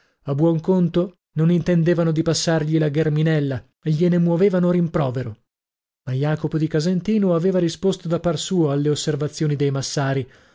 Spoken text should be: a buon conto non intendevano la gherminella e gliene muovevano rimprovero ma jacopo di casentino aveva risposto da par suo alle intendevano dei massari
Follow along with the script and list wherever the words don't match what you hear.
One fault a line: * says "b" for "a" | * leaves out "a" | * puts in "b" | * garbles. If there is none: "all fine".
* puts in "di passargli"
* says "osservazioni" for "intendevano"